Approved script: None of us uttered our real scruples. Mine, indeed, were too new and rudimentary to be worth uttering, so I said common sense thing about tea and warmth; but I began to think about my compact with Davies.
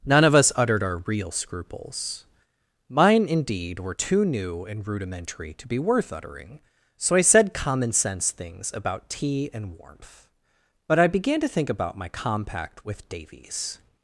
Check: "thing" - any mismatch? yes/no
yes